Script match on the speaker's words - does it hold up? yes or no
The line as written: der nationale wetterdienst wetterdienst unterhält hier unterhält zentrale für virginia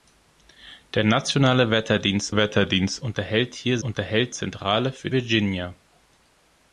yes